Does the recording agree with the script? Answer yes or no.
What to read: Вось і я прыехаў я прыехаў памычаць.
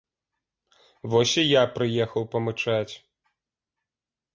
no